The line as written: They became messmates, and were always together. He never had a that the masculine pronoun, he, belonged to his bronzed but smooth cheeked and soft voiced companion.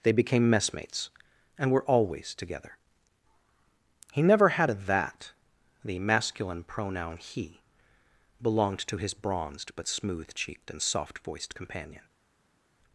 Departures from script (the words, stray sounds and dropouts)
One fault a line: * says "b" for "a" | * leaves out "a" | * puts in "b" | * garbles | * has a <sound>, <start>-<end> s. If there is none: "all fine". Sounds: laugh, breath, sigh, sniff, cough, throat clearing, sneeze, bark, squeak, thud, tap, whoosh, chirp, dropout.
all fine